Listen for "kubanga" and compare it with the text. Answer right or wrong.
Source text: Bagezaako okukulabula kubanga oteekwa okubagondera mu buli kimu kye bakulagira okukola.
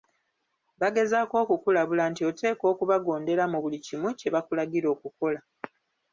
wrong